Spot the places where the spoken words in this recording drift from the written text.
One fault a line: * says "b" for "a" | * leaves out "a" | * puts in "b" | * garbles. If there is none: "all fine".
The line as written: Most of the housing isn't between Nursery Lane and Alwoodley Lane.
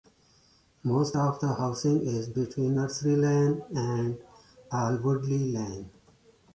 * says "is" for "isn't"